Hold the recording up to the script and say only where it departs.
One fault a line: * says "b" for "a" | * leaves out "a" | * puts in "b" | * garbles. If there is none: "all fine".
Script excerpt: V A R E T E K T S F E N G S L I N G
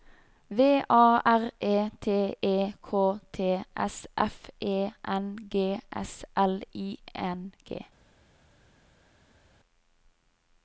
all fine